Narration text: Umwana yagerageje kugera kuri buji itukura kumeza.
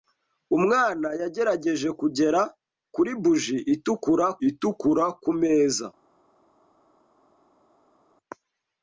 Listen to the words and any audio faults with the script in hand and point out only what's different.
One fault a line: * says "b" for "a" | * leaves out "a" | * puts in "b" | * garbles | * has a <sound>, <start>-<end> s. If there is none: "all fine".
* puts in "itukura"